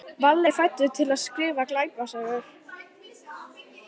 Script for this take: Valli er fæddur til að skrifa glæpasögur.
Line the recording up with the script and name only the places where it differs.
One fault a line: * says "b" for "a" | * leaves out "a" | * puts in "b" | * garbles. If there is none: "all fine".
all fine